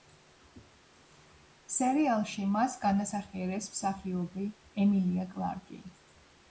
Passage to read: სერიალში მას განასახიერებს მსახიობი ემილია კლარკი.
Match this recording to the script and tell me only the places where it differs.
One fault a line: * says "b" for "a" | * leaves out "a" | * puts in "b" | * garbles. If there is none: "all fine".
all fine